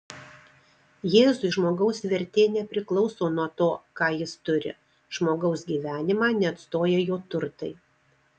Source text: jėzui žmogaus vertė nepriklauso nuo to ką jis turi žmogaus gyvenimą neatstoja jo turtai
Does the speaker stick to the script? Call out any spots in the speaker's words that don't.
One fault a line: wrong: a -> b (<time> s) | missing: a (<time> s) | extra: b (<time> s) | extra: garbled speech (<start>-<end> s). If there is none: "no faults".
no faults